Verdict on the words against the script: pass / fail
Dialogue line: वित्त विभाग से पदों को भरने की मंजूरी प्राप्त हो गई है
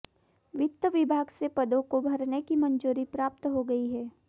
pass